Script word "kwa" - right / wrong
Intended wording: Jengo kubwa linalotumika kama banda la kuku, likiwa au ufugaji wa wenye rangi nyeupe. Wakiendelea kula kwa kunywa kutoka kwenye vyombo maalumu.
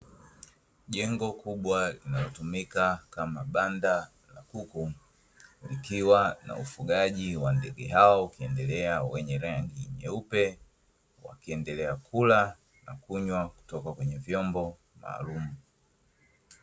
wrong